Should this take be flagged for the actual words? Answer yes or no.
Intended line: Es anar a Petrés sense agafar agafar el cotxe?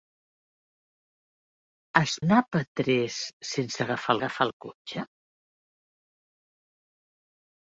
no